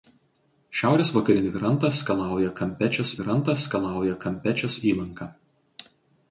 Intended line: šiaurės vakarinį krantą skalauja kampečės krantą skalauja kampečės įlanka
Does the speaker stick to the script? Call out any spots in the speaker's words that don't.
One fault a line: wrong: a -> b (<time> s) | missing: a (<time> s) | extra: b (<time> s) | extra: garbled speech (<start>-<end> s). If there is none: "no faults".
no faults